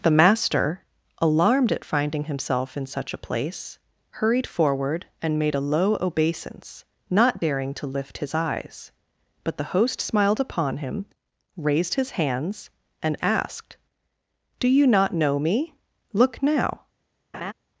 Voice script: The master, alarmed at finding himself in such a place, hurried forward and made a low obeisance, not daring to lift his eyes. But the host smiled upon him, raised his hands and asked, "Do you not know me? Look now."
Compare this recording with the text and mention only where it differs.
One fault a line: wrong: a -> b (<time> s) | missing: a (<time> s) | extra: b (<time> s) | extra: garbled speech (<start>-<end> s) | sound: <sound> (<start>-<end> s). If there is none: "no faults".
sound: laugh (17.3-17.5 s)